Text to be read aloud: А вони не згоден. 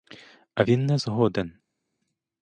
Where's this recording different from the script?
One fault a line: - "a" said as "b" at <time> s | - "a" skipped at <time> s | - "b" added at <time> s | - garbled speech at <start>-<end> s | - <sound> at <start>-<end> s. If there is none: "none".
- "вони" said as "він" at 0.6 s